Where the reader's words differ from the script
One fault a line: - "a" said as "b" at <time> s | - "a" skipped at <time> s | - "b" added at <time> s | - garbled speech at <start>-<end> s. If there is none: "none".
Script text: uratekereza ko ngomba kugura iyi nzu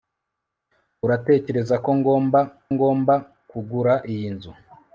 - "ngomba" added at 2.7 s